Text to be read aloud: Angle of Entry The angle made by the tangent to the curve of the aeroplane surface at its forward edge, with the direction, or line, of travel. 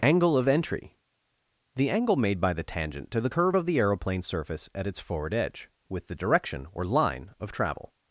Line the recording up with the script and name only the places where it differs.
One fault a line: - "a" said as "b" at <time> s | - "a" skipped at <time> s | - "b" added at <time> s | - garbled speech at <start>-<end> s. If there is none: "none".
none